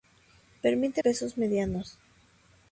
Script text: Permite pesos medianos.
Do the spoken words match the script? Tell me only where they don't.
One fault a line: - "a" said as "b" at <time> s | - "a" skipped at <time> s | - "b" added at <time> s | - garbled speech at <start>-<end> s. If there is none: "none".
none